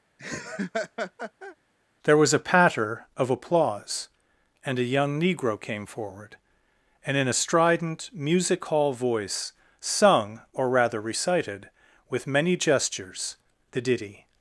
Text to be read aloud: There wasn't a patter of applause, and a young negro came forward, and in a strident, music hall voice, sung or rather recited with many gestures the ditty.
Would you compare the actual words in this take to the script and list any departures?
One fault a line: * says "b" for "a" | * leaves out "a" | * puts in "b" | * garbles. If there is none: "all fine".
* says "was" for "wasn't"